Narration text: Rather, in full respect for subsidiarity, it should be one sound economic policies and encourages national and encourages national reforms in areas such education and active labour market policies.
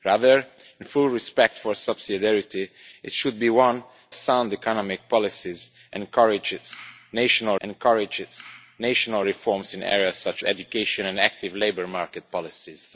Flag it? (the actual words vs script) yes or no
no